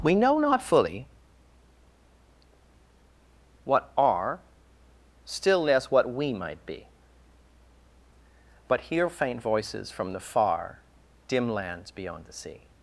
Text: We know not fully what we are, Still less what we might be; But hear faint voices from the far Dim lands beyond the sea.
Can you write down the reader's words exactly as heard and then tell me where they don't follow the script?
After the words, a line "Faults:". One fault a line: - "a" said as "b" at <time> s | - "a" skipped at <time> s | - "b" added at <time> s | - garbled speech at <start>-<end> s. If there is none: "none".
We know not fully what are, Still less what we might be; But hear faint voices from the far Dim lands beyond the sea.
Faults:
- "we" skipped at 3.9 s